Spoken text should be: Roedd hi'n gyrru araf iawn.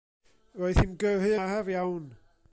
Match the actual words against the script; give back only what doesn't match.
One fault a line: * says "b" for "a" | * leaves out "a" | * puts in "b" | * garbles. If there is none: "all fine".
all fine